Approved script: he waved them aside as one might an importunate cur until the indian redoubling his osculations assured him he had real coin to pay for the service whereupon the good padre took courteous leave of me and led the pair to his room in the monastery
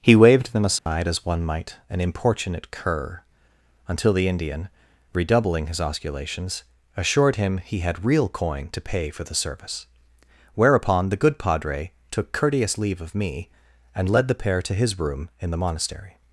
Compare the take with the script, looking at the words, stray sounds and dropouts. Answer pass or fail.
fail